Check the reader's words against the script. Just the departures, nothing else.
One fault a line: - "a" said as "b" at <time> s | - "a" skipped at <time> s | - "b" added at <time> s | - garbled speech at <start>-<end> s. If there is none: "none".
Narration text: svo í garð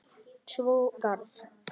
none